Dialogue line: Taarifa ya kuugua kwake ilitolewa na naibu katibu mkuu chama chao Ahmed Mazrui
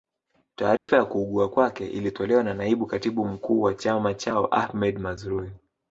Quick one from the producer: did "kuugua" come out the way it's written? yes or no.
yes